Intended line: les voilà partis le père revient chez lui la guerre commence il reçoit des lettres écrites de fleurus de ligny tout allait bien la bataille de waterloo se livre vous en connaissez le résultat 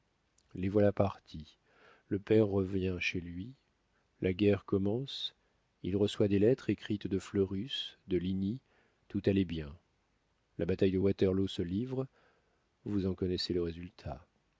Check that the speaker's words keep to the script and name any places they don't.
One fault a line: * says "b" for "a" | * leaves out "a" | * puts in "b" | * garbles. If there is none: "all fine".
all fine